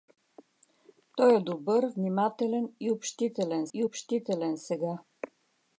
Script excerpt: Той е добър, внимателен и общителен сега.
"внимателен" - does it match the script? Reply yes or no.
yes